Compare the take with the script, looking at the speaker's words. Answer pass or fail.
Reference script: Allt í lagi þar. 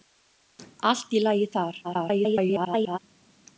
fail